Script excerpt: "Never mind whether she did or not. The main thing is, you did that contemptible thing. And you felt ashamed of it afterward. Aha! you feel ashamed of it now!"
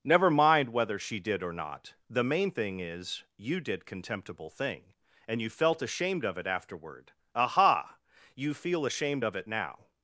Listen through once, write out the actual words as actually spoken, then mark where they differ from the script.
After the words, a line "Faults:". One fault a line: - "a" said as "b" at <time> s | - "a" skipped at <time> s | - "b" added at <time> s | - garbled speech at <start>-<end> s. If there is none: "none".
"Never mind whether she did or not. The main thing is, you did contemptible thing. And you felt ashamed of it afterward. Aha! you feel ashamed of it now!"
Faults:
- "that" skipped at 3.9 s